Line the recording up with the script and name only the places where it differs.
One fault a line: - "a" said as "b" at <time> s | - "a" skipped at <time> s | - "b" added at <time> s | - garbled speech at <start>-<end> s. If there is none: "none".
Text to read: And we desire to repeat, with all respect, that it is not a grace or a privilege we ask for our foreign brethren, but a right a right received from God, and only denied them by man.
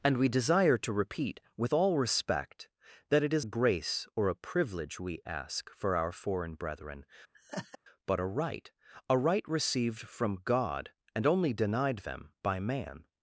- "not" skipped at 3.5 s